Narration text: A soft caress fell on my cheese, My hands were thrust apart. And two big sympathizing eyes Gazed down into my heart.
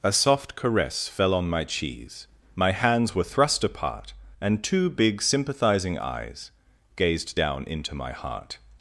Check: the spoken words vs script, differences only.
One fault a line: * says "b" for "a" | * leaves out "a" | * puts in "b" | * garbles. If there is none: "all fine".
all fine